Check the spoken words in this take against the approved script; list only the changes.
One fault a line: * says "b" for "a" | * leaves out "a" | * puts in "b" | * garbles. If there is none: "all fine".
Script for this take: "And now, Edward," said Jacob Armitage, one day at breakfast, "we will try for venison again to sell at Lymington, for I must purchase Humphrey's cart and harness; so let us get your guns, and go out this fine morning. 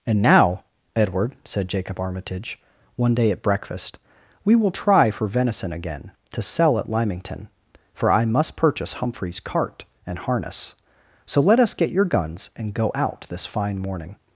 all fine